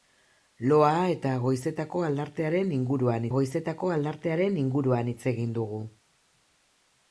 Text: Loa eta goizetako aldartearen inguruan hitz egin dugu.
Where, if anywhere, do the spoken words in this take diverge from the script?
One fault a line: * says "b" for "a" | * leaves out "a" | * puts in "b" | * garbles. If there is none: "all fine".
* puts in "goizetako aldartearen inguruan"